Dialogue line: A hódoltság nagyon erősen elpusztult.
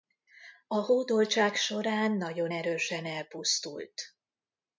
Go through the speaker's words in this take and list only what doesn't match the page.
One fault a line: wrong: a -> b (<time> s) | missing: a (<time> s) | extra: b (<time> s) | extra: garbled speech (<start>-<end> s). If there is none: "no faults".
extra: során (1.6 s)